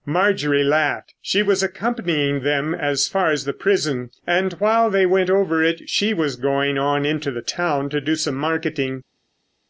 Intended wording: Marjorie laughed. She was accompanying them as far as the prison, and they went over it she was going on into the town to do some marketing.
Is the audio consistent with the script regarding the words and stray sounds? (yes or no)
no